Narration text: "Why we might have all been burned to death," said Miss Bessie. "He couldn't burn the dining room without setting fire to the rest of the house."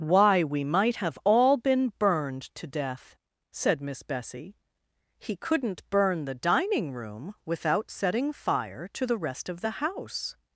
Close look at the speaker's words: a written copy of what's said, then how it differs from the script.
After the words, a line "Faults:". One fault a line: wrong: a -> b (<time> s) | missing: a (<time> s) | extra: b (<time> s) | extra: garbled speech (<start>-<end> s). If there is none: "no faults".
"Why we might have all been burned to death," said Miss Bessie. "He couldn't burn the dining room without setting fire to the rest of the house."
Faults:
no faults